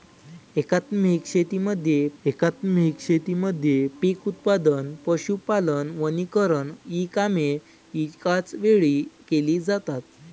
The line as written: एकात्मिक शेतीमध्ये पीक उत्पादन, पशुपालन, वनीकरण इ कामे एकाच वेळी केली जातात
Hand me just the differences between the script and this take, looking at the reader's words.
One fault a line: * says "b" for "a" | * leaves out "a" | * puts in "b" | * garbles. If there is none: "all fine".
* puts in "एकात्मिक शेतीमध्ये"